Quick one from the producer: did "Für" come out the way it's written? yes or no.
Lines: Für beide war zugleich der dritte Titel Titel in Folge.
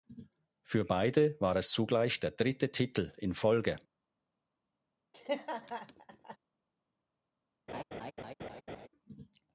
yes